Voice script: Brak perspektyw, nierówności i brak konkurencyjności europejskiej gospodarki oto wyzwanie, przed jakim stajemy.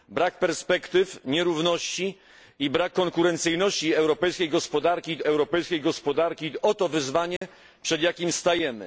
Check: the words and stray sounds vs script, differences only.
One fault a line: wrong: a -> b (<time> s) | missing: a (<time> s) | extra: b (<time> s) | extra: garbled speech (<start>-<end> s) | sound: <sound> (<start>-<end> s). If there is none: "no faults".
extra: europejskiej gospodarki (5.2 s)
sound: dropout (7.4-7.4 s)